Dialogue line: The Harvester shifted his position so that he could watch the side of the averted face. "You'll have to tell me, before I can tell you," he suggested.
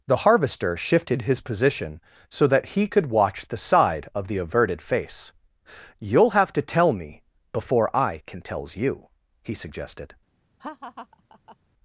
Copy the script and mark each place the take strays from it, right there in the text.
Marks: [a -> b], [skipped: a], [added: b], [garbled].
The Harvester shifted his position so that he could watch the side of the averted face. "You'll have to tell me, before I can [tell -> tells] you," he suggested.